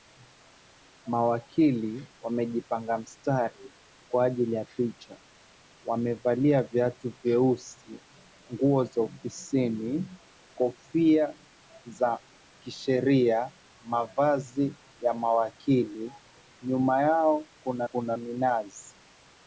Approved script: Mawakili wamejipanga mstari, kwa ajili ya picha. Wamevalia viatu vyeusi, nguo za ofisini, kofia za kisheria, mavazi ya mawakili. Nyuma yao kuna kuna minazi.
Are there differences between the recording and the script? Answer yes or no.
no